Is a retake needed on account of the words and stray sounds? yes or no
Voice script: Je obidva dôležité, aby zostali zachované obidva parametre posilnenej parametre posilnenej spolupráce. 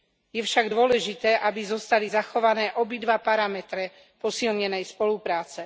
yes